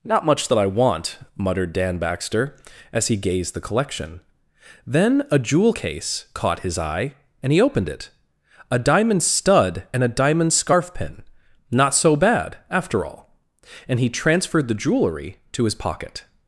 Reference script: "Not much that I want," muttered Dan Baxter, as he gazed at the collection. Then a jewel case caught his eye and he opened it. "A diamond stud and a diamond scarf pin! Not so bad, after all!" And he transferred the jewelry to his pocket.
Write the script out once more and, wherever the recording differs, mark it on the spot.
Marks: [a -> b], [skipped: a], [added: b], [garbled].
"Not much that I want," muttered Dan Baxter, as he gazed [skipped: at] the collection. Then a jewel case caught his eye and he opened it. "A diamond stud and a diamond scarf pin! Not so bad, after all!" And he transferred the jewelry to his pocket.